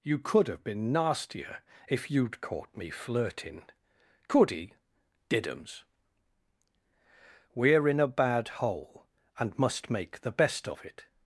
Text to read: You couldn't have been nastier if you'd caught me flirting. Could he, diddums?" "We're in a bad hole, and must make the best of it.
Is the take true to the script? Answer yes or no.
no